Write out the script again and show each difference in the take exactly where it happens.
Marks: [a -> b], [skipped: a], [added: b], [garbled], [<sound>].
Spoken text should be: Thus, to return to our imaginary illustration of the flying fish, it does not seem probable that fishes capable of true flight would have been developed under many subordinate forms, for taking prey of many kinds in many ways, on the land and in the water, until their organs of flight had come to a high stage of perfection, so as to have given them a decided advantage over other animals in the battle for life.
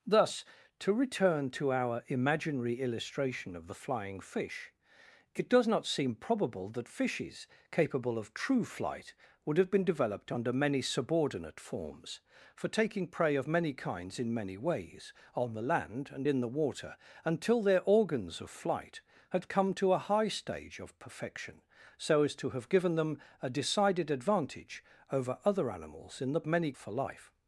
Thus, to return to our imaginary illustration of the flying fish, it does not seem probable that fishes capable of true flight would have been developed under many subordinate forms, for taking prey of many kinds in many ways, on the land and in the water, until their organs of flight had come to a high stage of perfection, so as to have given them a decided advantage over other animals in the [battle -> many] for life.